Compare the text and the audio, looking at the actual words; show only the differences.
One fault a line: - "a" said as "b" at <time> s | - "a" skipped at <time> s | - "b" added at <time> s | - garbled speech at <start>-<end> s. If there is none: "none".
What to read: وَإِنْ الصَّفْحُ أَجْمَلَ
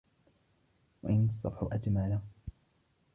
none